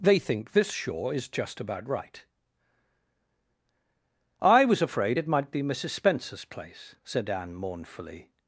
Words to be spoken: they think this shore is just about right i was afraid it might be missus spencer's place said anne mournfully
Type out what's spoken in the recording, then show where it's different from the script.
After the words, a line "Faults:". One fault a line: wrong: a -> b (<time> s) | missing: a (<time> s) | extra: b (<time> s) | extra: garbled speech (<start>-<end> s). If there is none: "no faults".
they think this shore is just about right i was afraid it might be missus spencer's place said anne mournfully
Faults:
no faults